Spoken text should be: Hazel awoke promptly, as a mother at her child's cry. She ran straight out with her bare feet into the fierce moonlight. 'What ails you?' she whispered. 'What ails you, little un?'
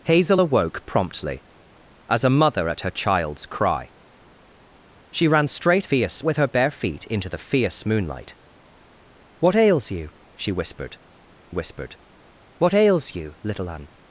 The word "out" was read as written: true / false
false